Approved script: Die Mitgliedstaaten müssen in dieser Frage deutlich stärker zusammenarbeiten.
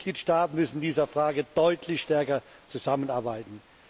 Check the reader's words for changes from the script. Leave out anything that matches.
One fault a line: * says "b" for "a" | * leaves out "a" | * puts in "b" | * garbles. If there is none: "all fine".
all fine